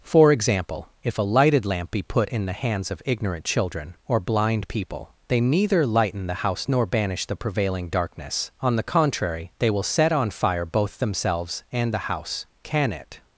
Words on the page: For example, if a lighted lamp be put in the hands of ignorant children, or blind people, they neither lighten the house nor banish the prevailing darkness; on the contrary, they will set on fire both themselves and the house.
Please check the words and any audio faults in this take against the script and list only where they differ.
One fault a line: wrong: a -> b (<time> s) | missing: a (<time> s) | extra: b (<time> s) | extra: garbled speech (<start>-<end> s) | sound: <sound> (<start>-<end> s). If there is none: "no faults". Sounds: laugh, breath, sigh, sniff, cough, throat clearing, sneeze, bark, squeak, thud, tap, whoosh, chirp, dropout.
extra: Can it (12.6 s)